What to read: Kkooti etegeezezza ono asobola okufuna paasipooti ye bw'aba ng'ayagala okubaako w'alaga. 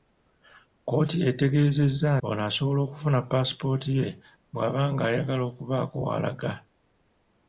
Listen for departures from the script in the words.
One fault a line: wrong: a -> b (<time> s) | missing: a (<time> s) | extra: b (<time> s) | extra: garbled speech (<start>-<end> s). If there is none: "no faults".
no faults